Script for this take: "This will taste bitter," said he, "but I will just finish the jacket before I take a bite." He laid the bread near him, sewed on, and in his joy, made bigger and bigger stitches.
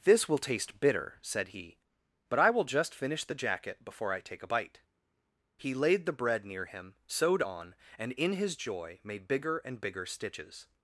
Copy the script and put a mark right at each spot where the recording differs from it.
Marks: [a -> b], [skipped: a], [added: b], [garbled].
"This will taste bitter," said he, "but I will just finish the jacket before I take a bite." He laid the bread near him, sewed on, and in his joy, made bigger and bigger stitches.